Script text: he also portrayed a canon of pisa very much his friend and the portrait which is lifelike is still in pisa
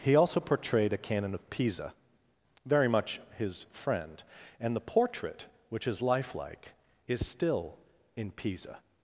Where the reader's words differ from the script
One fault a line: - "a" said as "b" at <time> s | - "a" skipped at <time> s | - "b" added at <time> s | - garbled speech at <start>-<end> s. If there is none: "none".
none